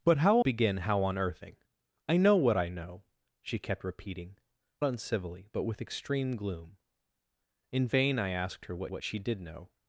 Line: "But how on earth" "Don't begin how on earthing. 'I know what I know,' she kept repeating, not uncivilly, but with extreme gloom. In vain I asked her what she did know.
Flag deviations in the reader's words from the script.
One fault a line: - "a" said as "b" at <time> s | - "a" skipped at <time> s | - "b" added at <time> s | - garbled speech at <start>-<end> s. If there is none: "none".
- "on earth Don't" skipped at 0.4 s
- "not" skipped at 4.4 s
- "what" added at 8.9 s